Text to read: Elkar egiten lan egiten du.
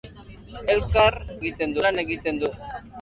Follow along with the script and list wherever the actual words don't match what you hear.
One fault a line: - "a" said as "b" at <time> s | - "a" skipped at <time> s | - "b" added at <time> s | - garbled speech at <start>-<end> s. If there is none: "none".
none